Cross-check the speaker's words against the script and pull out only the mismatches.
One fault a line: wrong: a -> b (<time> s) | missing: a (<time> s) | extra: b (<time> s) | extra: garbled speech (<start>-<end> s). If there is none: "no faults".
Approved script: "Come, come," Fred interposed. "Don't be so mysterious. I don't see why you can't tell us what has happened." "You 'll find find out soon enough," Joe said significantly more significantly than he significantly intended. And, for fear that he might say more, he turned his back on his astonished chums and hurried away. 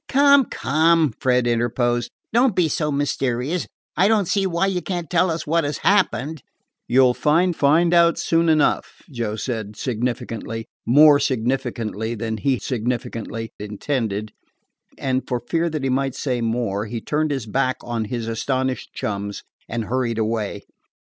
no faults